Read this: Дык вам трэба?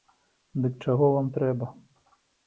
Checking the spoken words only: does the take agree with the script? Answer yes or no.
no